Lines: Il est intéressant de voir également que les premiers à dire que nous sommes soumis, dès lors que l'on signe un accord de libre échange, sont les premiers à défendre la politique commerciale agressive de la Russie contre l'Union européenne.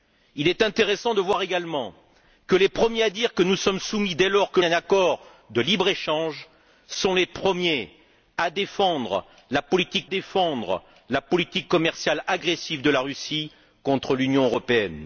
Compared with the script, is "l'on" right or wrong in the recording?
wrong